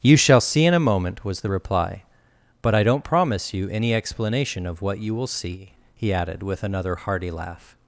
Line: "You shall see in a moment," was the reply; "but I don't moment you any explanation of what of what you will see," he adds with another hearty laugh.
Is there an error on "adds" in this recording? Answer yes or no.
yes